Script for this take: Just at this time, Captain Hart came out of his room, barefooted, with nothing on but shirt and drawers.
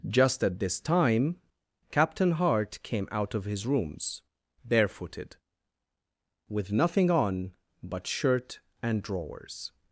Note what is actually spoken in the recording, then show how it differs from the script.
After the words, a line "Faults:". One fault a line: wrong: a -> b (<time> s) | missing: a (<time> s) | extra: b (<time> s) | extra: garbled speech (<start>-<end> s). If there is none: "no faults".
Just at this time, Captain Hart came out of his rooms, barefooted, with nothing on but shirt and drawers.
Faults:
wrong: room -> rooms (3.7 s)